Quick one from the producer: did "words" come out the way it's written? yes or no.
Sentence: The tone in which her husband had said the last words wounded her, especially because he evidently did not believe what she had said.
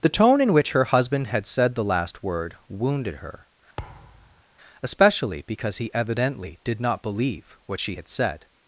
no